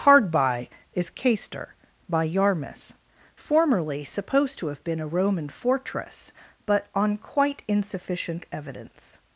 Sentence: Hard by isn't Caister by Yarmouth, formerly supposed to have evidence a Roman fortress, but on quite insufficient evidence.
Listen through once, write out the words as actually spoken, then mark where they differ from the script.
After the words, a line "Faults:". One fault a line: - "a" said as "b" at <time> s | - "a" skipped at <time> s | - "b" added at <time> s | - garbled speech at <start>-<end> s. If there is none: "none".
Hard by is Caister by Yarmouth, formerly supposed to have been a Roman fortress, but on quite insufficient evidence.
Faults:
- "isn't" said as "is" at 0.9 s
- "evidence" said as "been" at 4.8 s